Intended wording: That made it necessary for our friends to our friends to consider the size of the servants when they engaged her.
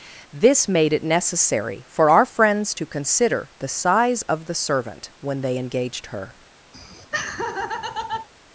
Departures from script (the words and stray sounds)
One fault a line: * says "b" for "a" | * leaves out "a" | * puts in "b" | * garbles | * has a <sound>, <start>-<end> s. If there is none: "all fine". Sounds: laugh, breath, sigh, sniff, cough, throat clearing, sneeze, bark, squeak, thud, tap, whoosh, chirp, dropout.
* says "This" for "That"
* leaves out "our friends to"
* says "servant" for "servants"
* has a laugh, 6.7-8.3 s